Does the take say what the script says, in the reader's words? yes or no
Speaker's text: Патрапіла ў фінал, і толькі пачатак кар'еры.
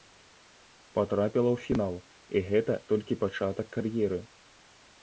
no